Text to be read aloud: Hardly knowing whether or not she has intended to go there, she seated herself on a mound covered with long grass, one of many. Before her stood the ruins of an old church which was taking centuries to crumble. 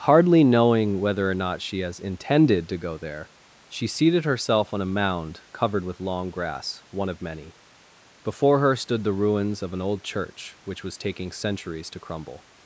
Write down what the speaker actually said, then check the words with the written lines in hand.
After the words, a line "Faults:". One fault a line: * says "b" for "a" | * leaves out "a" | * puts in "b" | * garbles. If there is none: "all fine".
Hardly knowing whether or not she has intended to go there, she seated herself on a mound covered with long grass, one of many. Before her stood the ruins of an old church which was taking centuries to crumble.
Faults:
all fine